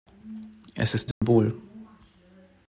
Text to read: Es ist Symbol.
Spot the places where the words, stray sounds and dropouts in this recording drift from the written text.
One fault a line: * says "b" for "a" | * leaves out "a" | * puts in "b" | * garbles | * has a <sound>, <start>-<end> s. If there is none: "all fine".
* has a dropout, 1.1-1.2 s